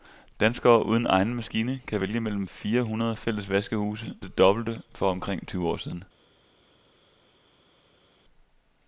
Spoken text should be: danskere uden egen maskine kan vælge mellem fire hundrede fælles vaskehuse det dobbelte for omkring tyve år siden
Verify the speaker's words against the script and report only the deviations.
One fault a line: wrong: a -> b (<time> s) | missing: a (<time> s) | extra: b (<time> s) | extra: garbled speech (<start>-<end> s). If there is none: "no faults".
no faults